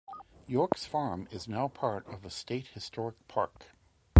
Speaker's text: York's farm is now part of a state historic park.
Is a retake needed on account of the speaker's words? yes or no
no